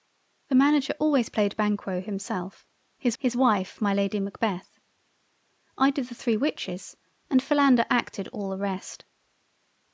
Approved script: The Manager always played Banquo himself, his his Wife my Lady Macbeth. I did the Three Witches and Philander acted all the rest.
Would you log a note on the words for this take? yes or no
no